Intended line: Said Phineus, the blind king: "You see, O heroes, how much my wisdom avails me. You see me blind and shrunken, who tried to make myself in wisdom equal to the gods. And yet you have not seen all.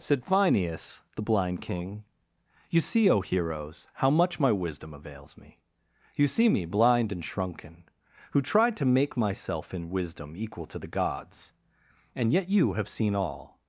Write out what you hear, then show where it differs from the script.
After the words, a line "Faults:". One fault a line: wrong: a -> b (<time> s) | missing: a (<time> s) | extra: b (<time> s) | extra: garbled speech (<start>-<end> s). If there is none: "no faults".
Said Phineus, the blind king: "You see, O heroes, how much my wisdom avails me. You see me blind and shrunken, who tried to make myself in wisdom equal to the gods. And yet you have seen all.
Faults:
missing: not (12.9 s)